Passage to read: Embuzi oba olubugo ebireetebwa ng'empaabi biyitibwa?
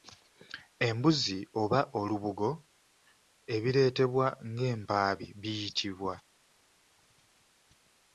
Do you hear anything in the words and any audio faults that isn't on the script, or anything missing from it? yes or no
no